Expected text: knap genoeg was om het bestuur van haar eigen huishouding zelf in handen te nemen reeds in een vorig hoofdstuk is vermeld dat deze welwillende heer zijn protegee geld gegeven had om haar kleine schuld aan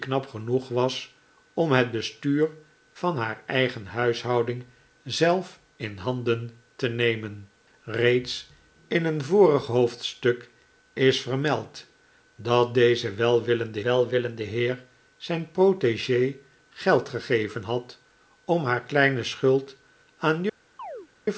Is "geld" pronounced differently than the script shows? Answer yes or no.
no